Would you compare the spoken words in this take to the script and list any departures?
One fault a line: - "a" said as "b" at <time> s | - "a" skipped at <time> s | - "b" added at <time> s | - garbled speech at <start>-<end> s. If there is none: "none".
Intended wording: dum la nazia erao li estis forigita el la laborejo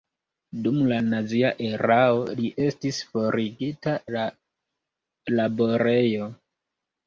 - "el" skipped at 4.0 s